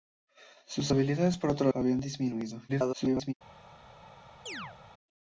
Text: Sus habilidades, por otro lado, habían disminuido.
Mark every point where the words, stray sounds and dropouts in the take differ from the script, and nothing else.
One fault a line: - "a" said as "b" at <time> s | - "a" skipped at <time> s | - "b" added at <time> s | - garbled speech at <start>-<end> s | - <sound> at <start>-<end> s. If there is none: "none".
- "lado" skipped at 1.7 s
- garbled speech at 2.7-3.3 s
- chirp at 4.5-4.8 s